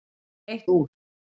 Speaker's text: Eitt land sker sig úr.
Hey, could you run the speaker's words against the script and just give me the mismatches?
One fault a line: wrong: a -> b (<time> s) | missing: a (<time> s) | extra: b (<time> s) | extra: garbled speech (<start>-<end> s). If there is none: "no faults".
missing: land sker sig (0.7 s)